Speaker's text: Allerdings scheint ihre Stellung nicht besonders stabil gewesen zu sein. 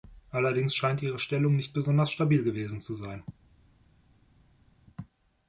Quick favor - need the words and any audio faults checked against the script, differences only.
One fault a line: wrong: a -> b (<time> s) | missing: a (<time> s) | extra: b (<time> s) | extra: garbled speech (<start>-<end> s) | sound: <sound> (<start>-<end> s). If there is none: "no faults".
no faults